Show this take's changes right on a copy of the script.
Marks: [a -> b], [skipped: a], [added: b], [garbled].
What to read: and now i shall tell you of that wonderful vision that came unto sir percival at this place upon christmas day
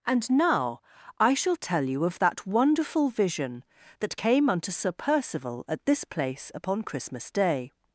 and now i shall tell you of that wonderful vision that came unto sir percival at this place upon christmas day